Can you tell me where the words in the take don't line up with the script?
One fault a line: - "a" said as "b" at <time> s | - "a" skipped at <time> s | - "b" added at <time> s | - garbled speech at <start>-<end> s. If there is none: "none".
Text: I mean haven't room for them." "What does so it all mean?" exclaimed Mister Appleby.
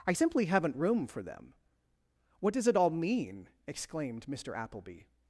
- "mean" said as "simply" at 0.1 s
- "so" skipped at 2.7 s